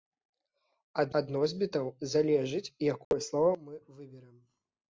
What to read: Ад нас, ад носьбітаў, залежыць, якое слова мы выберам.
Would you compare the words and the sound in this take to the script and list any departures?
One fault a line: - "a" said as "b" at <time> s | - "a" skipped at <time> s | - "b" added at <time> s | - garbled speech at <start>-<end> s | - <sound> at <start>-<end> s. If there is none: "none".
- "нас" skipped at 1.1 s
- dropout at 3.0-3.1 s